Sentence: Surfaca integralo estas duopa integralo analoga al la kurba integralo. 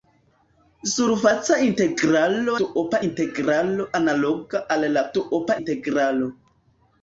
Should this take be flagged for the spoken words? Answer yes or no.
yes